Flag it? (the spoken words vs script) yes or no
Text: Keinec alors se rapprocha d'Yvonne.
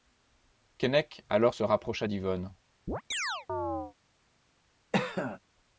no